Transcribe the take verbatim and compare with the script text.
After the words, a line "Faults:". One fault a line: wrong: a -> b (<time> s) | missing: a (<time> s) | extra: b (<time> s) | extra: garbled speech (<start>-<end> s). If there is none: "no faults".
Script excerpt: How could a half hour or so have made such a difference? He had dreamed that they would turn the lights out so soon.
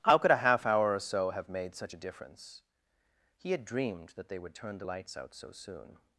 How could a half hour or so have made such a difference? He had dreamed that they would turn the lights out so soon.
Faults:
no faults